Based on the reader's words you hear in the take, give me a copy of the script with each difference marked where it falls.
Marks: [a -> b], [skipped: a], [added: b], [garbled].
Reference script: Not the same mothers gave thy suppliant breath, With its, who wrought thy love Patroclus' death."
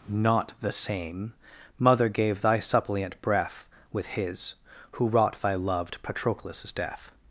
Not the same [mothers -> mother] gave thy suppliant breath, With [its, -> his] who wrought thy [love -> loved] Patroclus' death."